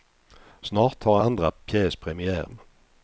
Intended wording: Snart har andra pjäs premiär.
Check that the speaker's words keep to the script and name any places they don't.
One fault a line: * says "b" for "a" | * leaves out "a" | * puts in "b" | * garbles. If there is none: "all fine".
all fine